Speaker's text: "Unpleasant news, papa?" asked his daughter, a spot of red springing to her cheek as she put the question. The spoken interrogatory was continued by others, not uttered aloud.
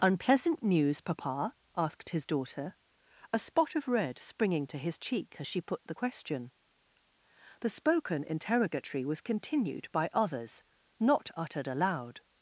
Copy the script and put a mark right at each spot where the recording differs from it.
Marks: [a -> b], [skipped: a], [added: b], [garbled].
"Unpleasant news, papa?" asked his daughter, a spot of red springing to [her -> his] cheek as she put the question. The spoken interrogatory was continued by others, not uttered aloud.